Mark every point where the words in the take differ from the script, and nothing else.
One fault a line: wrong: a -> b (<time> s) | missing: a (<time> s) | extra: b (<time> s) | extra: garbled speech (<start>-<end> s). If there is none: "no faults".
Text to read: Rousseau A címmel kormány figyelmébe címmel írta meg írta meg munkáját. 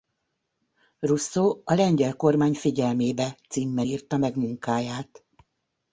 wrong: címmel -> lengyel (1.7 s)
missing: írta meg (4.4 s)